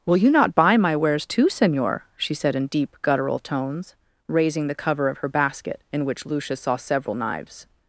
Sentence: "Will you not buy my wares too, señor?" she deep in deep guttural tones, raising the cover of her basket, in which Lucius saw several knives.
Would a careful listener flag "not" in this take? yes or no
no